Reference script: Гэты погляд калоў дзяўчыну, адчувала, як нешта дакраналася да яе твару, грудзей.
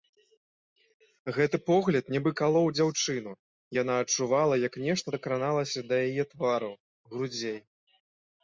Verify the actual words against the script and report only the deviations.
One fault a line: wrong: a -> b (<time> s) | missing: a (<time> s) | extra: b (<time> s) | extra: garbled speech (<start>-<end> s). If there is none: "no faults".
extra: нібы (2.1 s)
extra: яна (3.8 s)